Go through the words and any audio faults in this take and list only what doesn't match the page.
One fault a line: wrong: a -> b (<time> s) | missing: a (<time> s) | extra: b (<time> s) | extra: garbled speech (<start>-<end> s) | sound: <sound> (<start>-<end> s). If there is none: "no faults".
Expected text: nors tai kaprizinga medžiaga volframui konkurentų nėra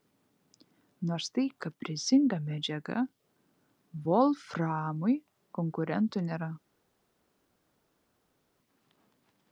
no faults